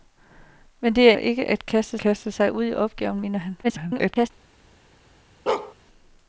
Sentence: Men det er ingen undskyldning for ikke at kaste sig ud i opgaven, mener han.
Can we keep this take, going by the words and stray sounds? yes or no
no